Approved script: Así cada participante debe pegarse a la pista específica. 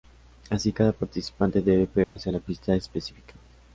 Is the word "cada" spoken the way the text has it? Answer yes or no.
yes